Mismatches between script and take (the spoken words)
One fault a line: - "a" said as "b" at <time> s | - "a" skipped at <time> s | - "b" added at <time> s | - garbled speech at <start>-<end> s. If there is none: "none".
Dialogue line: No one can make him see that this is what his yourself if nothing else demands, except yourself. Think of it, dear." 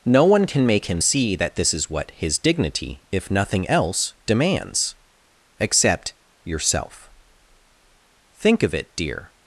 - "yourself" said as "dignity" at 2.4 s